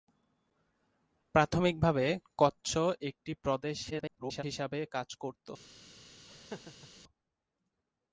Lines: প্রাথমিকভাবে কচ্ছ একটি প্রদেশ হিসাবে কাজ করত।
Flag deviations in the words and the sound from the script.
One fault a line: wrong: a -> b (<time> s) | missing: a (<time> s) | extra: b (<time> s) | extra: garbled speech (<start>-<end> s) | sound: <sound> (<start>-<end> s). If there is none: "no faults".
extra: garbled speech (3.9-4.4 s)
sound: laugh (6.3-6.9 s)